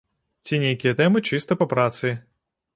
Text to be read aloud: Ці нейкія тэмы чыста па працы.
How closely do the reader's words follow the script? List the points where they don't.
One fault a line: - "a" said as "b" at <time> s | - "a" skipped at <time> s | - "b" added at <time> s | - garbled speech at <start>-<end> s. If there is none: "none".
none